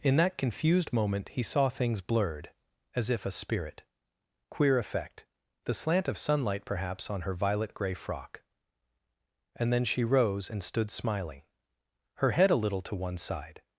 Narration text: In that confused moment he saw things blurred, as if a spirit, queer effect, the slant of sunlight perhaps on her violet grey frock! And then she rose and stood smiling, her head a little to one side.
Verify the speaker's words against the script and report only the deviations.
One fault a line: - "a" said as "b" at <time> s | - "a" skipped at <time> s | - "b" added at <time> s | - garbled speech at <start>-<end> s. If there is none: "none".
none